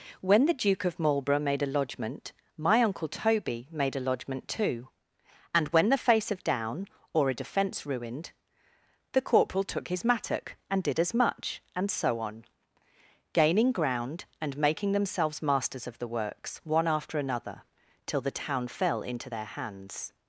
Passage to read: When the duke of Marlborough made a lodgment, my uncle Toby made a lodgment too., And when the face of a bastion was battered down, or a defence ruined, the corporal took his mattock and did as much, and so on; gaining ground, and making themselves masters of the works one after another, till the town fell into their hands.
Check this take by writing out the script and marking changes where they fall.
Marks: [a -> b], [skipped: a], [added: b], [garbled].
When the duke of Marlborough made a lodgment, my uncle Toby made a lodgment too., And when the face of [skipped: a bastion was battered] down, or a defence ruined, the corporal took his mattock and did as much, and so on; gaining ground, and making themselves masters of the works one after another, till the town fell into their hands.